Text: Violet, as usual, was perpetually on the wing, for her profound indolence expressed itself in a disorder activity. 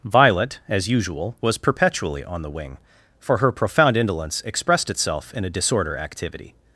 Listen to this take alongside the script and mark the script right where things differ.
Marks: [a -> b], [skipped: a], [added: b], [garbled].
Violet, as usual, was perpetually on the wing, for her profound indolence expressed itself in a disorder activity.